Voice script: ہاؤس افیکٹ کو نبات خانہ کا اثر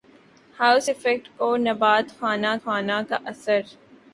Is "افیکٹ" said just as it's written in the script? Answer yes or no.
yes